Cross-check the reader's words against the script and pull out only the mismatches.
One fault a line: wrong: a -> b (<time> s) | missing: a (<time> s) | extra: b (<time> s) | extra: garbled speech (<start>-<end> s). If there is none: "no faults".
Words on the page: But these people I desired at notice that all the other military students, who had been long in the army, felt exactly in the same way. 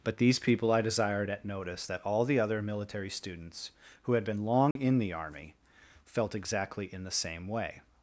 no faults